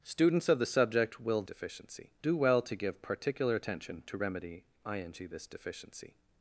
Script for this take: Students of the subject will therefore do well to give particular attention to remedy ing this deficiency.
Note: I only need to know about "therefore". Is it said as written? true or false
false